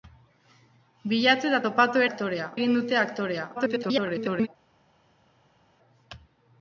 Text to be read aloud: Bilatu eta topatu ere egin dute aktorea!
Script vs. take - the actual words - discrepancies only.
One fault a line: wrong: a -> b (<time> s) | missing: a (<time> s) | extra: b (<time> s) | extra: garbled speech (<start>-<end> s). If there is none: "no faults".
wrong: ere -> aktorea (2.1 s)
extra: garbled speech (3.5-4.5 s)